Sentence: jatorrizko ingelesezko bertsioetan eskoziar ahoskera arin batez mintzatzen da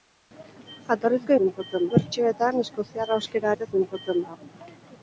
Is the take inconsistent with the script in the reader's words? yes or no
yes